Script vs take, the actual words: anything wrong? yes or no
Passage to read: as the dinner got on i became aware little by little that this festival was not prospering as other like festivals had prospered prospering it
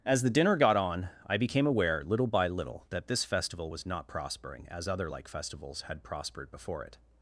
yes